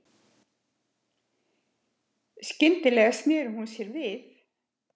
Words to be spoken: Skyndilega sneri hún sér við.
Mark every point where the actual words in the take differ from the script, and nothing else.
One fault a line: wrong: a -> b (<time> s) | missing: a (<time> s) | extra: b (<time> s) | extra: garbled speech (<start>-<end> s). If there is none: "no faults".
no faults